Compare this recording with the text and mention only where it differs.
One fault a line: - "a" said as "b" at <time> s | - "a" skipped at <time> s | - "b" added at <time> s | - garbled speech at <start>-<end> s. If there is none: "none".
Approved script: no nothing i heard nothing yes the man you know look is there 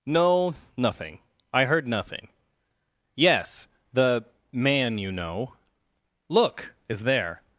none